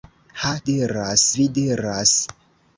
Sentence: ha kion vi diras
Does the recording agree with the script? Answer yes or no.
no